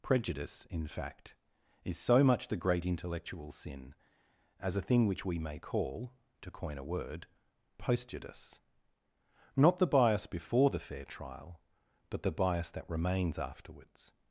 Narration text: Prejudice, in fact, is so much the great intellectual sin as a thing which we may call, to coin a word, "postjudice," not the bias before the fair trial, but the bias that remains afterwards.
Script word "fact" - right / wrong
right